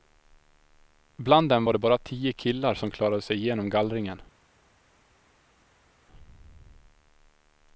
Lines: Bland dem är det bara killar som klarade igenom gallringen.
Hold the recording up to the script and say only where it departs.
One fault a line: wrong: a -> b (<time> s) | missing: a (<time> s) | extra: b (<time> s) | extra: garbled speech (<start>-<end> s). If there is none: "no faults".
wrong: är -> var (1.6 s)
extra: tio (2.0 s)
extra: sig (3.2 s)